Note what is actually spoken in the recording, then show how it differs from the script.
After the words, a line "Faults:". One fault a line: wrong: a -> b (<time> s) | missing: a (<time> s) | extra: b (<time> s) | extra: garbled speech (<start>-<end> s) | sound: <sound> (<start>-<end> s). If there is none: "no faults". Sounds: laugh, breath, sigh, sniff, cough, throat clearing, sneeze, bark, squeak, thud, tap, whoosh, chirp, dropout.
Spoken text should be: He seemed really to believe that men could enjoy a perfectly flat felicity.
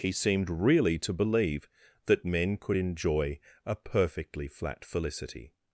He seemed really to believe that men could enjoy a perfectly flat felicity.
Faults:
no faults